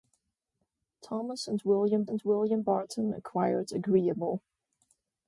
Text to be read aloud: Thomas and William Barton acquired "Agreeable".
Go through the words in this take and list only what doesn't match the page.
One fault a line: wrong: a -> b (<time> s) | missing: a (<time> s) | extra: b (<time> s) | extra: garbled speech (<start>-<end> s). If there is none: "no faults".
extra: and William (2.1 s)